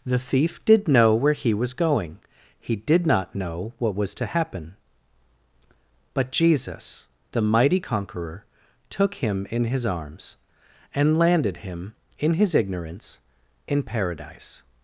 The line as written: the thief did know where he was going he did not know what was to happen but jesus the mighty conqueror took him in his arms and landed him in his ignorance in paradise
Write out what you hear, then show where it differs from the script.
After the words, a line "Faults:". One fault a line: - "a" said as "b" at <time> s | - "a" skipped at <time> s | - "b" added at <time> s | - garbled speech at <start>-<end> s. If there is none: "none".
the thief did know where he was going he did not know what was to happen but jesus the mighty conqueror took him in his arms and landed him in his ignorance in paradise
Faults:
none